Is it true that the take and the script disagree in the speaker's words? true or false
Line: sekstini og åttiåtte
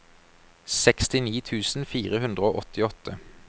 true